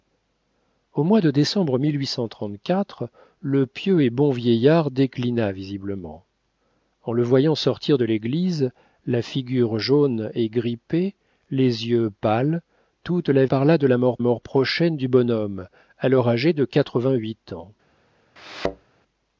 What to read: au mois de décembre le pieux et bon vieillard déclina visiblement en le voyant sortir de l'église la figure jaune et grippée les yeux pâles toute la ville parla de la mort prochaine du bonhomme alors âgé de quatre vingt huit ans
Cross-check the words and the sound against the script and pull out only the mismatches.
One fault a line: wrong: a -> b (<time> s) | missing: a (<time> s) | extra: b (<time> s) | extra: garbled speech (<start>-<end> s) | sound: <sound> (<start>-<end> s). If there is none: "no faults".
missing: ville (13.4 s)
extra: mort (14.2 s)
sound: thud (18.4-18.9 s)